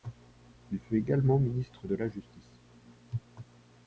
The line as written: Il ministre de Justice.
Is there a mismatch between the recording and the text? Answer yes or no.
yes